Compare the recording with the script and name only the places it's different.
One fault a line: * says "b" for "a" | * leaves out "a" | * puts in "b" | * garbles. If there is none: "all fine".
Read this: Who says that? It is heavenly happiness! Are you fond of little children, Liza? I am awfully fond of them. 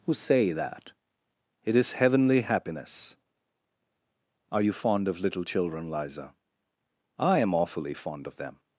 * says "say" for "says"